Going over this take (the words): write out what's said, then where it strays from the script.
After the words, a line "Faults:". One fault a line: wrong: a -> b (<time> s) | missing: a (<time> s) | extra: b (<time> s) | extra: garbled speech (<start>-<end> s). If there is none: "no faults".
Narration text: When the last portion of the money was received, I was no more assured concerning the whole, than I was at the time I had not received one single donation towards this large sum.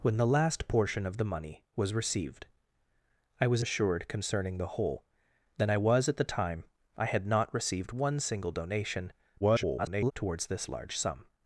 When the last portion of the money was received, I was assured concerning the whole, than I was at the time I had not received one single donation [garbled] towards this large sum.
Faults:
missing: no more (3.6 s)
extra: garbled speech (9.4-10.1 s)